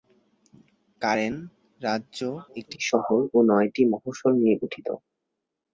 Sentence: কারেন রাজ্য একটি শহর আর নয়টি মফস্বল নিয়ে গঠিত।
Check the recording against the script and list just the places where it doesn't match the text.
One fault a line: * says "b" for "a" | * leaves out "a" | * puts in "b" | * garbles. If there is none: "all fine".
* says "ও" for "আর"